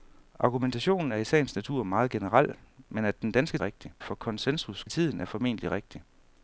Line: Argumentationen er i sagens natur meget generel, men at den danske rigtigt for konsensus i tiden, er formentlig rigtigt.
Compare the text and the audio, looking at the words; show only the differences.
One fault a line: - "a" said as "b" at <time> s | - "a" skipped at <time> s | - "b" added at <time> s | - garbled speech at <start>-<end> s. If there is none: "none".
none